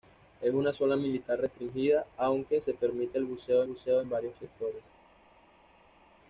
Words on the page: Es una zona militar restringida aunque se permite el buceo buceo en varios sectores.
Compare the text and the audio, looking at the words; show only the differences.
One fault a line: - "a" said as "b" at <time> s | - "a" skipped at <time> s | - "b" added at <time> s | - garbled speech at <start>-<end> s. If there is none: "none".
none